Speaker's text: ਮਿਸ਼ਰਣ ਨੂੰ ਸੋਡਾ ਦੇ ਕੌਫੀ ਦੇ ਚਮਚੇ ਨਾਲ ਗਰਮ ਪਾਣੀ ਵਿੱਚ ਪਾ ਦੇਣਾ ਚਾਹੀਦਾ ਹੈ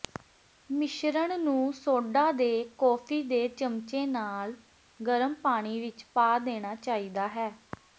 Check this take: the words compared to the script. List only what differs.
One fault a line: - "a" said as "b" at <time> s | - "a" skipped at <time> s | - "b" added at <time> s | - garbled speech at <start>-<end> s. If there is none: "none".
none